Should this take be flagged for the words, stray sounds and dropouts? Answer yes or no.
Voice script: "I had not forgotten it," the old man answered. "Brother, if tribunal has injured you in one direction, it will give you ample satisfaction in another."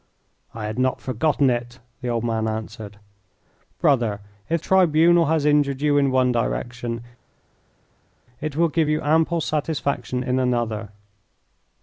no